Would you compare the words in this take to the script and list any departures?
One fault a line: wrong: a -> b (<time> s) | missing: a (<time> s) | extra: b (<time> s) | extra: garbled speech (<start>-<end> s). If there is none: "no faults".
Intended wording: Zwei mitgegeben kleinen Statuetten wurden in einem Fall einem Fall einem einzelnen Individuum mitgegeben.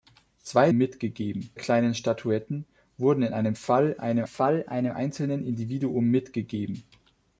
no faults